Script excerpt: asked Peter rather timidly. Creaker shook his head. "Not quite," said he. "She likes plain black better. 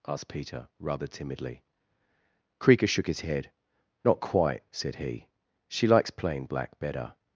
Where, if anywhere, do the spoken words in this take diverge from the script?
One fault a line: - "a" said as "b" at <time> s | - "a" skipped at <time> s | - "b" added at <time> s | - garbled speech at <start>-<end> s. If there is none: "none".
none